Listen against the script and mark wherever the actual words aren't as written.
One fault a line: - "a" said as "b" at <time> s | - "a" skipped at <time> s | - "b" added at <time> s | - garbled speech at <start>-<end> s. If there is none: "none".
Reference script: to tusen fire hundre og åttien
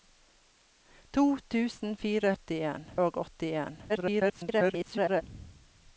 - "hundre" said as "åttien" at 2.3 s
- garbled speech at 3.9-5.2 s